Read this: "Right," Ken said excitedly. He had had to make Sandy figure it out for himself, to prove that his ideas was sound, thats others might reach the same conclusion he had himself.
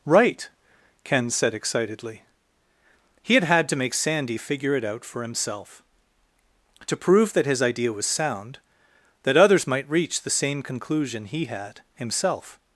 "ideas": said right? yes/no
no